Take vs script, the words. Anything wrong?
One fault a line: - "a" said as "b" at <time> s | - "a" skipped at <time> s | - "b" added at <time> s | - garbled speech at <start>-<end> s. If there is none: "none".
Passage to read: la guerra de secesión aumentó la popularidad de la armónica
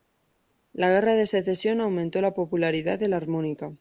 none